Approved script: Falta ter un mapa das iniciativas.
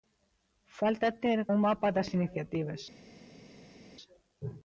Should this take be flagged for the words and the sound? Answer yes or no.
no